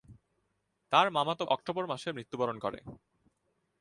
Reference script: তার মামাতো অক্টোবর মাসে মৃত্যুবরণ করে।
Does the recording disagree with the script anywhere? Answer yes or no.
no